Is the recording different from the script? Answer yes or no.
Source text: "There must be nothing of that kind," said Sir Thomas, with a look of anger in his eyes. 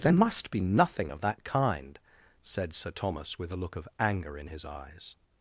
no